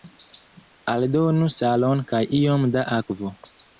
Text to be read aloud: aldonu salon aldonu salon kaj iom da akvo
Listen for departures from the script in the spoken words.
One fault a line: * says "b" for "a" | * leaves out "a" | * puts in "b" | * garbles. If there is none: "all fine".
* leaves out "aldonu salon"